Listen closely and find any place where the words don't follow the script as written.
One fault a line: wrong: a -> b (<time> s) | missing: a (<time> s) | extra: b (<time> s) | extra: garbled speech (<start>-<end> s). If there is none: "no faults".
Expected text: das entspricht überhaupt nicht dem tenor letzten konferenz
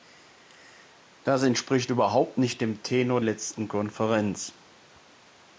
no faults